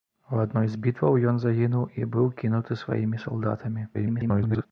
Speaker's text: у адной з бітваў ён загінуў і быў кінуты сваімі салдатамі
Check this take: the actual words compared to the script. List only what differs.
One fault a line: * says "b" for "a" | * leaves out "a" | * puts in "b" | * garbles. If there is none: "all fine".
* garbles